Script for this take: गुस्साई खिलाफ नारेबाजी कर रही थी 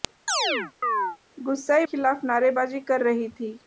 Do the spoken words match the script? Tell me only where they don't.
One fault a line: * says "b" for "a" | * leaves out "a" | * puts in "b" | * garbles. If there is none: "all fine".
all fine